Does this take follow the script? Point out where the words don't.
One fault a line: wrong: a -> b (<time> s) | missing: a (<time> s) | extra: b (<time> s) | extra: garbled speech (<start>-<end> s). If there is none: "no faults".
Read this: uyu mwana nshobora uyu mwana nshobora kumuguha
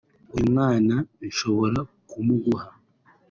missing: uyu mwana nshobora (1.8 s)